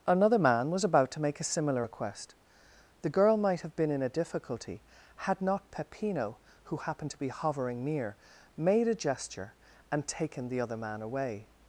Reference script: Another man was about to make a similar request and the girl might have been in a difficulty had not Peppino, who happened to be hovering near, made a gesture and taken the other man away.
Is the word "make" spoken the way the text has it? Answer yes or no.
yes